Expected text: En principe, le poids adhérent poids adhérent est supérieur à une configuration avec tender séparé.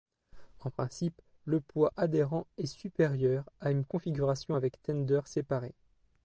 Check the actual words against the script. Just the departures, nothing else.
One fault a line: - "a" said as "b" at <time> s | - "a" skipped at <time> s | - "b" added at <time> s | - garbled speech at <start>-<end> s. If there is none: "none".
- "poids adhérent" skipped at 2.5 s